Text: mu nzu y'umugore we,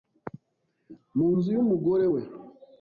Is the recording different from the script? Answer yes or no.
no